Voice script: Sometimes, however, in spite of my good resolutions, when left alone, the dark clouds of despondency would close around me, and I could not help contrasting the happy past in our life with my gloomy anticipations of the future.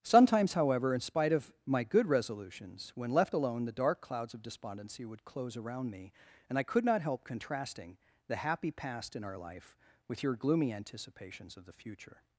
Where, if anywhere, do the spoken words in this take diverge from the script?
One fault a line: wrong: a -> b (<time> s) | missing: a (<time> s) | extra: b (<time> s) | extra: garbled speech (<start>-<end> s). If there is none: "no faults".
wrong: my -> your (10.2 s)